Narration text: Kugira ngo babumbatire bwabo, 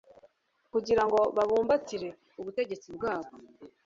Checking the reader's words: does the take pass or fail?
fail